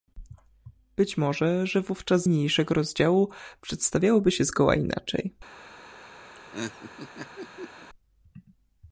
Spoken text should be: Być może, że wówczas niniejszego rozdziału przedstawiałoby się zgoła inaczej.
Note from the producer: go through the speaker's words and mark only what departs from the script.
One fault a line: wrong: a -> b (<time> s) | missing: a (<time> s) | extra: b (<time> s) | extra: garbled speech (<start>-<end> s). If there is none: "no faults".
no faults